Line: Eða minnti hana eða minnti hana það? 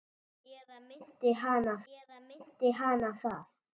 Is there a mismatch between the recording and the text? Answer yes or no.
no